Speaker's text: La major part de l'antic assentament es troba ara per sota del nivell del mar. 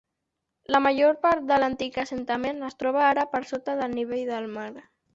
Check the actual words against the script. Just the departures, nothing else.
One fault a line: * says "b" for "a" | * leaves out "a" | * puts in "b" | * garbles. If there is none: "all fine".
all fine